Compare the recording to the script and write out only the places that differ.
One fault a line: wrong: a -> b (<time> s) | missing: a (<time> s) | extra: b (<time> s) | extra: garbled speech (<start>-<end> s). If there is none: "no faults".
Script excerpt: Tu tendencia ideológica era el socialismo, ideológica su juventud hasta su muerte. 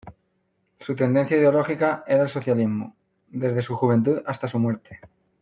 wrong: Tu -> Su (0.8 s)
wrong: ideológica -> desde (3.3 s)